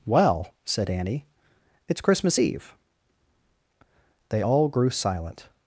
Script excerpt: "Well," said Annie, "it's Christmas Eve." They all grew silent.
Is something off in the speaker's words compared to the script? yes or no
no